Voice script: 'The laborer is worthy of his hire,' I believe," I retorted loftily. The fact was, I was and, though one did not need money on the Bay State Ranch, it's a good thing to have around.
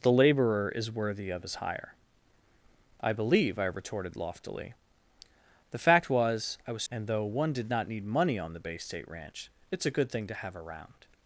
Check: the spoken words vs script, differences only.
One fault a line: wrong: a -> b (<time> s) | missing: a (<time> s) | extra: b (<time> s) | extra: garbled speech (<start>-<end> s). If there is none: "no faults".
no faults